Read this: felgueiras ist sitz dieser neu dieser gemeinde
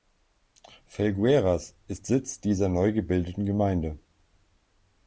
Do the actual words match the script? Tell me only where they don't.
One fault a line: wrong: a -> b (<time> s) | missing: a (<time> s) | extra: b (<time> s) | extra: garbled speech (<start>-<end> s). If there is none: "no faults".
wrong: dieser -> gebildeten (2.9 s)